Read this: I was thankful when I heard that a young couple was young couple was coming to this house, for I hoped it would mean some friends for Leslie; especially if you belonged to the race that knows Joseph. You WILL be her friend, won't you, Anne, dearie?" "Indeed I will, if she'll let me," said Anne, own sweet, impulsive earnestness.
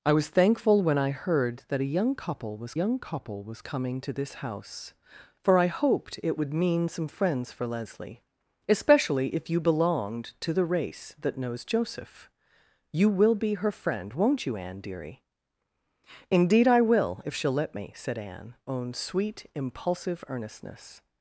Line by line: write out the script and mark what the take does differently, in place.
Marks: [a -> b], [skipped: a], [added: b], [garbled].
I was thankful when I heard that a young couple was young couple was coming to this house, for I hoped it would mean some friends for Leslie; especially if you belonged to the race that knows Joseph. You WILL be her friend, won't you, Anne, dearie?" "Indeed I will, if she'll let me," said Anne, own sweet, impulsive earnestness.